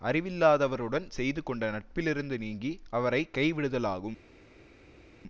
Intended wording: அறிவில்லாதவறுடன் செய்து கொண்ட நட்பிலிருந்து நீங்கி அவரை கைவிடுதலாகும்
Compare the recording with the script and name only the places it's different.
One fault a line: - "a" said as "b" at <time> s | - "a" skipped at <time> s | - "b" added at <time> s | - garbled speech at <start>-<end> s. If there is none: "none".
none